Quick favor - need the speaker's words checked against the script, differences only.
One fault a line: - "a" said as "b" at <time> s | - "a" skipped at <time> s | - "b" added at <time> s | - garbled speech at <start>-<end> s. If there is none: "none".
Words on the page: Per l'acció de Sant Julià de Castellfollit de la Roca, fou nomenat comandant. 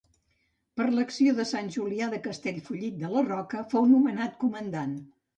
none